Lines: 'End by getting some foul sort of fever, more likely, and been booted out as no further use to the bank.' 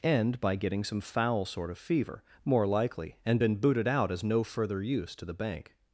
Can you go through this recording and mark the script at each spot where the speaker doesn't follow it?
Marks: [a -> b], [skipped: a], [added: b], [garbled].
'End by getting some foul sort of fever, more likely, and been booted out as no further use to the bank.'